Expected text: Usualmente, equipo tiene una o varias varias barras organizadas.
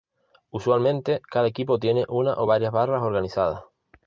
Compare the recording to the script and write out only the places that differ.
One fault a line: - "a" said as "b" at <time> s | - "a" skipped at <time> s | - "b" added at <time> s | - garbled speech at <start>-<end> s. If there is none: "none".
- "cada" added at 1.3 s
- "varias" skipped at 2.7 s